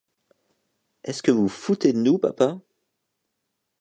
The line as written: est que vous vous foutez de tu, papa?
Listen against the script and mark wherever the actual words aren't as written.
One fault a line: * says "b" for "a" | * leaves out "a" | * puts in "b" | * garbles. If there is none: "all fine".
* puts in "ce"
* says "nous" for "tu"